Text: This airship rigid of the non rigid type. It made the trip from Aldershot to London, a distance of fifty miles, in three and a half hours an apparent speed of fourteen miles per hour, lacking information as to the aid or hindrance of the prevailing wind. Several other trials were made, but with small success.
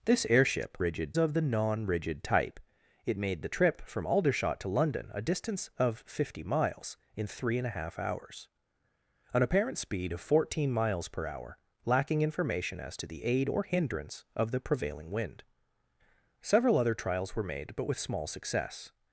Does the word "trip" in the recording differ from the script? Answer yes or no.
no